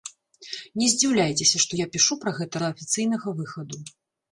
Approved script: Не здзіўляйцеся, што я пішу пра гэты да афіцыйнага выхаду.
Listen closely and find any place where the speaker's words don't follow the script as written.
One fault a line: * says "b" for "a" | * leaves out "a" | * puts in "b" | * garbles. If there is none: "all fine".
all fine